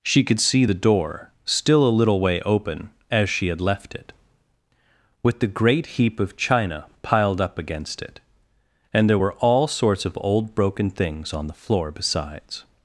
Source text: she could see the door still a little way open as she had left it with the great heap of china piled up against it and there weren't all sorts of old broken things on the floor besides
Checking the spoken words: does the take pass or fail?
fail